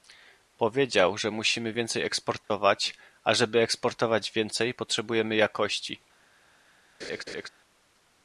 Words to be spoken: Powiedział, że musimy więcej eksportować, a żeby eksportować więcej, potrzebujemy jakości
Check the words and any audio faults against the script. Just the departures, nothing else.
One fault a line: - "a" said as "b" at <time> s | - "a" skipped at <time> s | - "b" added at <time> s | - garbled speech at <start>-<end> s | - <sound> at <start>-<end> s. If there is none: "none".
- dropout at 2.4-2.5 s
- laugh at 7.0-7.5 s